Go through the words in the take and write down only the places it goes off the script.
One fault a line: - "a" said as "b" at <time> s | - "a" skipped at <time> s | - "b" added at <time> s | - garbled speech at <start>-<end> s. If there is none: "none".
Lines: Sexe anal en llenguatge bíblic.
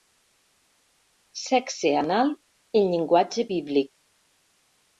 none